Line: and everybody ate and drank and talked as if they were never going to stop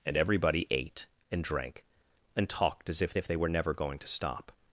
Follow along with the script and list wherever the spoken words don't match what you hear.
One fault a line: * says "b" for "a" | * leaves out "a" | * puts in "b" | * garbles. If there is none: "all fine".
* puts in "if"